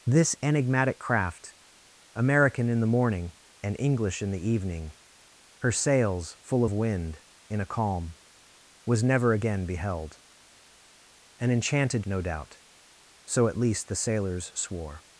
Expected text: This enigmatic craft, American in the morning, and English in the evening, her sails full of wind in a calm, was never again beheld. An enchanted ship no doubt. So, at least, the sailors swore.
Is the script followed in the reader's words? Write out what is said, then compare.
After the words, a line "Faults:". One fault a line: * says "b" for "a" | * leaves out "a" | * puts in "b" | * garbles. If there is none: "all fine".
This enigmatic craft, American in the morning, and English in the evening, her sails full of wind in a calm, was never again beheld. An enchanted no doubt. So, at least, the sailors swore.
Faults:
* leaves out "ship"